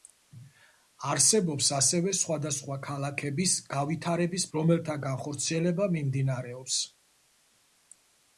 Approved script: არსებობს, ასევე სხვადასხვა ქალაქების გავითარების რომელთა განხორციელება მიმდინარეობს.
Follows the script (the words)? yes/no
yes